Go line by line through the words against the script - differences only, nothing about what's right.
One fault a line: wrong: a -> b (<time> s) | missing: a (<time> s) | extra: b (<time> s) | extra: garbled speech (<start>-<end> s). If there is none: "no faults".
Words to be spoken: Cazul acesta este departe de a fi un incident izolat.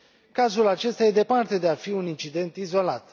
no faults